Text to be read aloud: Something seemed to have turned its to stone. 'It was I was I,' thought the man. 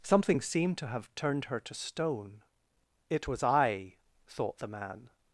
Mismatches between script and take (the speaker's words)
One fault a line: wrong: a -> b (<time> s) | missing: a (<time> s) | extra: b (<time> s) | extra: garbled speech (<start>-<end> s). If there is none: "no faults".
wrong: its -> her (1.4 s)
missing: was I (4.0 s)